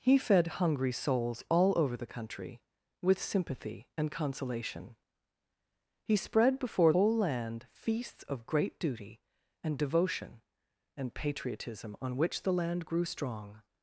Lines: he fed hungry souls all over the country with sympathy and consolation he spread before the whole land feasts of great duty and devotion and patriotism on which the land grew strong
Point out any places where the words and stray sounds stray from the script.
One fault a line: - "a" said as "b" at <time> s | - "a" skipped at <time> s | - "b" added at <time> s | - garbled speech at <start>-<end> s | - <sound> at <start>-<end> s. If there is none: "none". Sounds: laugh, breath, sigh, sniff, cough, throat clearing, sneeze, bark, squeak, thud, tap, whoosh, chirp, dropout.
- "the" skipped at 6.9 s